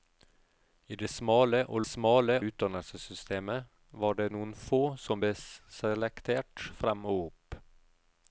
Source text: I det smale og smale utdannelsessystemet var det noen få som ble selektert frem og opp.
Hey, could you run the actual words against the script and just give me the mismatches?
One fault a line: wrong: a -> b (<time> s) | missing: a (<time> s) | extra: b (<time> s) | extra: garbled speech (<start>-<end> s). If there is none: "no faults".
no faults